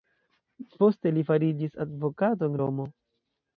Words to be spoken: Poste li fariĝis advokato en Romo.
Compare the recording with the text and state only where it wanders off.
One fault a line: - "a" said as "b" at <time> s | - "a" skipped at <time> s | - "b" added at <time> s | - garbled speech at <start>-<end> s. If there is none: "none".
none